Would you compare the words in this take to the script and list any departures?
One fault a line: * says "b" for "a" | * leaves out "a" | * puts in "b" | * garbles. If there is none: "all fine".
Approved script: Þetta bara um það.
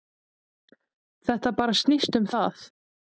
* puts in "snýst"